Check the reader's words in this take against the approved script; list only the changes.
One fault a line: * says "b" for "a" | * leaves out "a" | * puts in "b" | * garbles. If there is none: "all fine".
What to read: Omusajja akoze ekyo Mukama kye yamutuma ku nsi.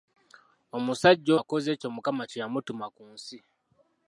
all fine